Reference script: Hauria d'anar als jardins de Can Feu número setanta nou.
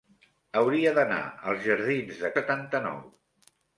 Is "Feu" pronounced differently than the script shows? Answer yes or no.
yes